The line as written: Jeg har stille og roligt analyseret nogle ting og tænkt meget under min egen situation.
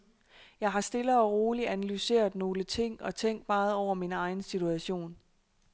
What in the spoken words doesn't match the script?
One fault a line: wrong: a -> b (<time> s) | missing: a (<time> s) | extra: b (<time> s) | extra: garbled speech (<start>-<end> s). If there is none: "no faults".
wrong: under -> over (3.7 s)